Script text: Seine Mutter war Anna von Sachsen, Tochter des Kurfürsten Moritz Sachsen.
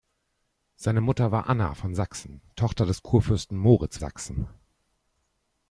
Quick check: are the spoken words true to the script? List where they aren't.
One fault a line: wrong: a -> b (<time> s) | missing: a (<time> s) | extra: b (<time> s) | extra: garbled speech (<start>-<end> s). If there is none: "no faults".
no faults